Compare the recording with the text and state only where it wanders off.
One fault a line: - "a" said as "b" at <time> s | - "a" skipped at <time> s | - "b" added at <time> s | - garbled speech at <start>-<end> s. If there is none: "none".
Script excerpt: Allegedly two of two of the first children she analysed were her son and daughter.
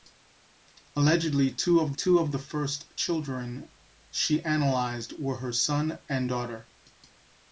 none